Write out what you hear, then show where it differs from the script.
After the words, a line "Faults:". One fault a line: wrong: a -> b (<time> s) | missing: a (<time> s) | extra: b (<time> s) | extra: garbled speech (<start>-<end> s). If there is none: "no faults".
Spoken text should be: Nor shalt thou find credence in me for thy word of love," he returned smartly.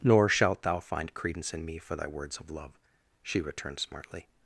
Nor shalt thou find credence in me for thy words of love," she returned smartly.
Faults:
wrong: word -> words (2.1 s)
wrong: he -> she (3.2 s)